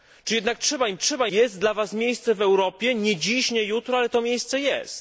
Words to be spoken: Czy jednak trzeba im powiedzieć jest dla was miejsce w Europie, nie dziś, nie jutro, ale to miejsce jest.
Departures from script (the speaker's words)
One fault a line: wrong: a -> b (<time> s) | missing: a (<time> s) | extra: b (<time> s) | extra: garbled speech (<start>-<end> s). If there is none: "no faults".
wrong: powiedzieć -> trzeba (1.0 s)